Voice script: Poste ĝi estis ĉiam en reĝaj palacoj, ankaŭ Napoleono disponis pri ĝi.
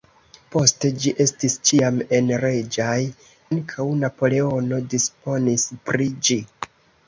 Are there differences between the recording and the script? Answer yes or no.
yes